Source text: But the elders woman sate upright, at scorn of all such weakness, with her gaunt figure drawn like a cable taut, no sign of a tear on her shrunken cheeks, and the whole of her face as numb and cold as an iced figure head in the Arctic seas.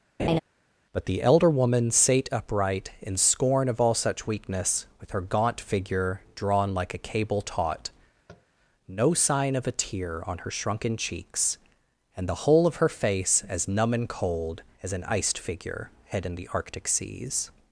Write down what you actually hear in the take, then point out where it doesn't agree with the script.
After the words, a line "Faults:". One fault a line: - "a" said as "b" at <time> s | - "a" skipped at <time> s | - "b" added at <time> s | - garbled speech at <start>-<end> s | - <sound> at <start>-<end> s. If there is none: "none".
But the elder woman sate upright, in scorn of all such weakness, with her gaunt figure drawn like a cable taut, no sign of a tear on her shrunken cheeks, and the whole of her face as numb and cold as an iced figure head in the Arctic seas.
Faults:
- laugh at 0.2-0.4 s
- "elders" said as "elder" at 1.2 s
- "at" said as "in" at 3.0 s
- tap at 8.3-8.5 s